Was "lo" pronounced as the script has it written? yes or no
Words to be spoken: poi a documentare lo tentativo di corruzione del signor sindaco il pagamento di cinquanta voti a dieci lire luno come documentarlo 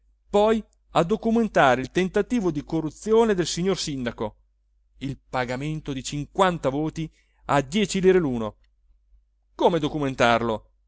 no